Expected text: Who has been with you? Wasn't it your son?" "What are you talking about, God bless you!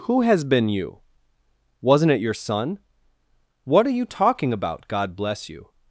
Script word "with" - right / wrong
wrong